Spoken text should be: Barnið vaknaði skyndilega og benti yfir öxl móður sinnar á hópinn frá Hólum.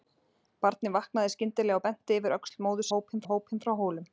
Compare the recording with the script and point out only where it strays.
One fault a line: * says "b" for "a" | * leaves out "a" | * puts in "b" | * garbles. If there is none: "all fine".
* says "hópinn" for "sinnar"